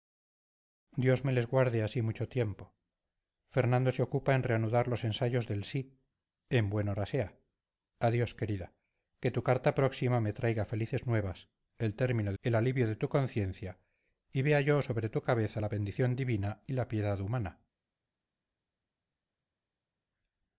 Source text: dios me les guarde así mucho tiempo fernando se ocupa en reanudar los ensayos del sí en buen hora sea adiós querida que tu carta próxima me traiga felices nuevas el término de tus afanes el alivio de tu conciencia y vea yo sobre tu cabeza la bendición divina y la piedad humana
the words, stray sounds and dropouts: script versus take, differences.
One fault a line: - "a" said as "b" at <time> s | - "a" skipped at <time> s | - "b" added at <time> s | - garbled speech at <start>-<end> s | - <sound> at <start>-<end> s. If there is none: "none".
- "de tus afanes" skipped at 12.3 s